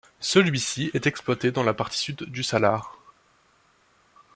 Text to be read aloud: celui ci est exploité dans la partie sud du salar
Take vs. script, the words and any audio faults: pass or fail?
pass